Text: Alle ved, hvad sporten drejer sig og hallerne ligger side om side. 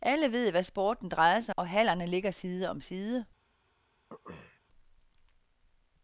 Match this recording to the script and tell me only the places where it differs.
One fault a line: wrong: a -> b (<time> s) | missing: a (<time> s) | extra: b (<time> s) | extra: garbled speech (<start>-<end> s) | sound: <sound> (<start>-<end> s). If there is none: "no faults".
sound: throat clearing (4.1-4.6 s)